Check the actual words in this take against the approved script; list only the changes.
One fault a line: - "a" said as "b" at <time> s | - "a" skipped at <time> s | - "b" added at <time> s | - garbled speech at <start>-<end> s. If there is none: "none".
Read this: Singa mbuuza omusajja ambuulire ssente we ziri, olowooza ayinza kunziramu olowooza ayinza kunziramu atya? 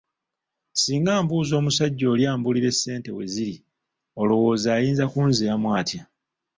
- "oli" added at 2.1 s
- "olowooza ayinza kunziramu" skipped at 5.7 s